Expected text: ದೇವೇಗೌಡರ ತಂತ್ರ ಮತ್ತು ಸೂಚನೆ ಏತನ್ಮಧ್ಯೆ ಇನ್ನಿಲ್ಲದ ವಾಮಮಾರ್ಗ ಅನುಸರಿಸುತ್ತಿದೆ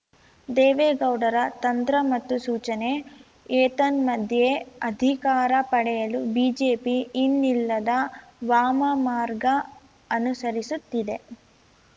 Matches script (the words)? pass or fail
fail